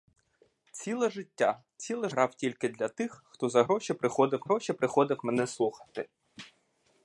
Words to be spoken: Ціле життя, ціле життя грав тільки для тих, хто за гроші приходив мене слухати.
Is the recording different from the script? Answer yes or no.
yes